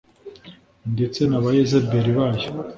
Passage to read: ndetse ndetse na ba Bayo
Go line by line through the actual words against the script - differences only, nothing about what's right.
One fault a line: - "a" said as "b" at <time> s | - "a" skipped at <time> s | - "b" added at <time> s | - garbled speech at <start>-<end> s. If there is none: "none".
- "ndetse" skipped at 1.2 s
- "Yezebeli" added at 1.6 s